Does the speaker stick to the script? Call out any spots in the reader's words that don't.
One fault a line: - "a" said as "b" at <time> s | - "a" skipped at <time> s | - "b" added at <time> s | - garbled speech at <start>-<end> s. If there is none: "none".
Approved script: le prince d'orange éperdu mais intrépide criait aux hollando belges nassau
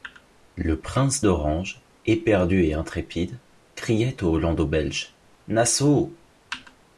- "mais" said as "et" at 2.6 s